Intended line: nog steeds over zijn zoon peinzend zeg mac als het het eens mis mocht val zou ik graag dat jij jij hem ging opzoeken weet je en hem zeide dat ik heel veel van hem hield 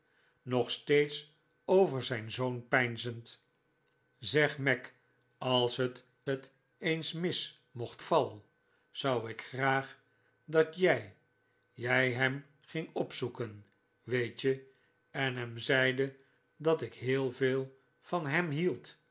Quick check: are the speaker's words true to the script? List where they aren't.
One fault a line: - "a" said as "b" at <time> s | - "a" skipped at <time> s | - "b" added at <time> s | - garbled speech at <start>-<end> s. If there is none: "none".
none